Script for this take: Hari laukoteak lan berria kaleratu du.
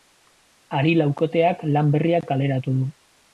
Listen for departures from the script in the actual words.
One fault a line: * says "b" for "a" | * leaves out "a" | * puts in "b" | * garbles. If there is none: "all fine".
all fine